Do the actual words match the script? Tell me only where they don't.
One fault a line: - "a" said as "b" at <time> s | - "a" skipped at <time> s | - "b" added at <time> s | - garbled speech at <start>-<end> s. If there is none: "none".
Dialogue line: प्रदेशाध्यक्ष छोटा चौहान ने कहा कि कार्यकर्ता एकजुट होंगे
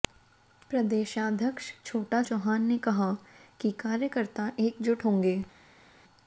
none